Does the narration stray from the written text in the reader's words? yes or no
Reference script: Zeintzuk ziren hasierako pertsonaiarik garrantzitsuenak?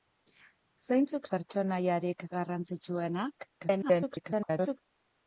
yes